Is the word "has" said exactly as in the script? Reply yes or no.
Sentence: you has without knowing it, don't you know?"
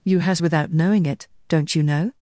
yes